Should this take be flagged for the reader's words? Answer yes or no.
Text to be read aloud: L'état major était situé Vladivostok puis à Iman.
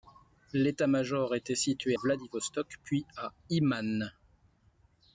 no